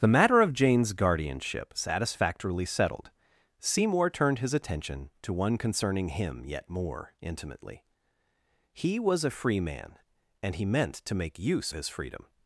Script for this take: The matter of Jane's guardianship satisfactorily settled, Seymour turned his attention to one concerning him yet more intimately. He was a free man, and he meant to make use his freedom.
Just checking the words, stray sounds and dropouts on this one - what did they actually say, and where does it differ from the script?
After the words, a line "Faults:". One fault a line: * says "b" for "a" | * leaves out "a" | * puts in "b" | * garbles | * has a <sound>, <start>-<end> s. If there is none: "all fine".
The matter of Jane's guardianship satisfactorily settled, Seymour turned his attention to one concerning him yet more intimately. He was a free man, and he meant to make use his freedom.
Faults:
all fine